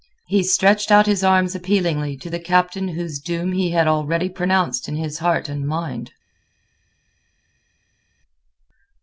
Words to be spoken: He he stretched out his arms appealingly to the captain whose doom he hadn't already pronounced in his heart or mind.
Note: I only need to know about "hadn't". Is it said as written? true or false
false